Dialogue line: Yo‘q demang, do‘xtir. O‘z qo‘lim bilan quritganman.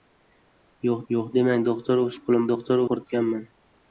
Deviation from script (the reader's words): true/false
true